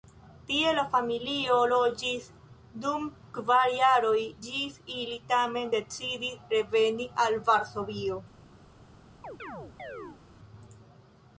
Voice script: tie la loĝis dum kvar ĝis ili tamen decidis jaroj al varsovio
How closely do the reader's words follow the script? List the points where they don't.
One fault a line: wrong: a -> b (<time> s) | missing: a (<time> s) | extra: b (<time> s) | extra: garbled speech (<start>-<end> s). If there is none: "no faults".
extra: familio (0.9 s)
extra: jaroj (3.8 s)
wrong: jaroj -> reveni (6.6 s)